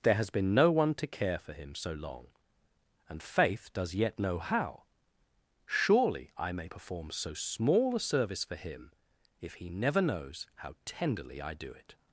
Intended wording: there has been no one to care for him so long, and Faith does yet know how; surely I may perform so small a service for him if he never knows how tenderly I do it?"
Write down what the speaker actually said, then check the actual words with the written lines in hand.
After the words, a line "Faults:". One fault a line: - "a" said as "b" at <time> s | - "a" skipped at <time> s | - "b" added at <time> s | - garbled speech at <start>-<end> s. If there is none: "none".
there has been no one to care for him so long, and Faith does yet know how; surely I may perform so small a service for him if he never knows how tenderly I do it?"
Faults:
none